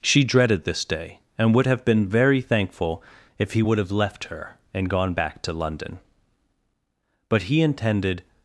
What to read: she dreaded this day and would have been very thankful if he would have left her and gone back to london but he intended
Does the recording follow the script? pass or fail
pass